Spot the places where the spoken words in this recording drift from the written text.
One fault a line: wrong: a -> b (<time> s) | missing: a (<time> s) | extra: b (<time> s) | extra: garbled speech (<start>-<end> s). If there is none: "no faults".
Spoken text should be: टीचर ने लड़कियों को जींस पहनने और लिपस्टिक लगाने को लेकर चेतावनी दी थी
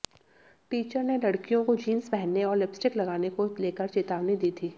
no faults